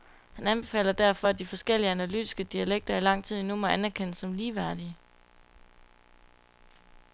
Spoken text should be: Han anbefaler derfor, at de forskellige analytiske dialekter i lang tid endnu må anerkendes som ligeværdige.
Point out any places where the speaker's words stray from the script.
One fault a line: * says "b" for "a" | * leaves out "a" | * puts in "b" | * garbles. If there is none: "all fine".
all fine